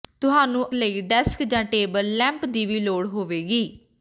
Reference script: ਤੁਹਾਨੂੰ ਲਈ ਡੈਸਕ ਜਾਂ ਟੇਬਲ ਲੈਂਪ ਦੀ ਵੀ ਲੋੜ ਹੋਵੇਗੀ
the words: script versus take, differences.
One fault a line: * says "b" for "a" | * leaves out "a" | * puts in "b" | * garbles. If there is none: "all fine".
all fine